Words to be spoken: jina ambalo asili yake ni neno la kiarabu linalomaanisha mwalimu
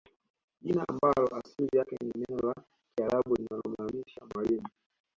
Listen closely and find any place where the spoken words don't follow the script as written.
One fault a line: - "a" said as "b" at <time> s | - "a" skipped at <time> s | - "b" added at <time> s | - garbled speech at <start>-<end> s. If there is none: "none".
none